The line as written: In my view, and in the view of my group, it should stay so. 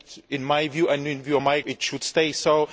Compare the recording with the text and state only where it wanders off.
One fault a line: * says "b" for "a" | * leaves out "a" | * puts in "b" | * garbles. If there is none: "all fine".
* leaves out "group"